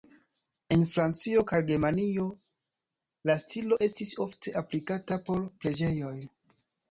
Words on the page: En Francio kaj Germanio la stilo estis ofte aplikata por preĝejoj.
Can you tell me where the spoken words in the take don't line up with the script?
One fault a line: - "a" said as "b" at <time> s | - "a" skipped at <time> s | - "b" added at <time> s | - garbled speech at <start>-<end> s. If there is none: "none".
none